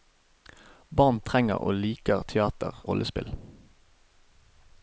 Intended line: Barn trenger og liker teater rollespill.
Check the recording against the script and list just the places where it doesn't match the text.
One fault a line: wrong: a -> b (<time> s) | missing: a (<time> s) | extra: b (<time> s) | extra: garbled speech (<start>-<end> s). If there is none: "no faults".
no faults